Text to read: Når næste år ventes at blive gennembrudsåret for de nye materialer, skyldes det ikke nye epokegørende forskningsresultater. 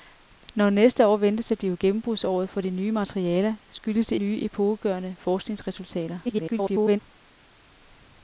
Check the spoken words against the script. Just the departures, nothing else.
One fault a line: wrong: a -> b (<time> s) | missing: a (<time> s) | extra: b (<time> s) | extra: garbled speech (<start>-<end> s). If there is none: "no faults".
missing: ikke (4.2 s)
extra: garbled speech (6.2-7.0 s)